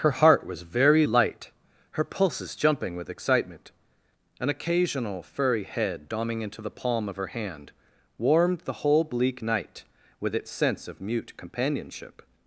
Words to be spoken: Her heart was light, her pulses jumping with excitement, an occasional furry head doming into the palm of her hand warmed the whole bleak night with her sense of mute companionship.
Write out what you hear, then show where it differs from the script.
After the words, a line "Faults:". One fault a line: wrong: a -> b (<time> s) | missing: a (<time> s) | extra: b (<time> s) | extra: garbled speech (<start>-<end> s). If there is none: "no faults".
Her heart was very light, her pulses jumping with excitement, an occasional furry head doming into the palm of her hand warmed the whole bleak night with its sense of mute companionship.
Faults:
extra: very (0.6 s)
wrong: her -> its (10.3 s)